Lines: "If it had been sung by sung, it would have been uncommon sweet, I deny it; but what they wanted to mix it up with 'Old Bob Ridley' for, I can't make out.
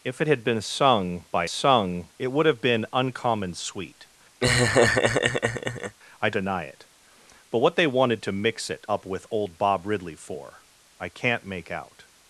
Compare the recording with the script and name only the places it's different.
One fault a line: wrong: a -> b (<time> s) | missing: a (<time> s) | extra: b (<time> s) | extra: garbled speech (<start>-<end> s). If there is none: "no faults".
no faults